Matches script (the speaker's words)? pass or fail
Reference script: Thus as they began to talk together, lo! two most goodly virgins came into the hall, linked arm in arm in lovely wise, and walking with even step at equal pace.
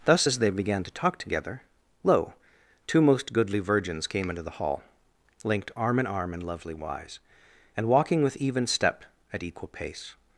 pass